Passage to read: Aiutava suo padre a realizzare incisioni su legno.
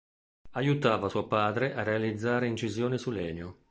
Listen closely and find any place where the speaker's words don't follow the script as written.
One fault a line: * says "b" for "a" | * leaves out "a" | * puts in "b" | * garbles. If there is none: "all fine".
all fine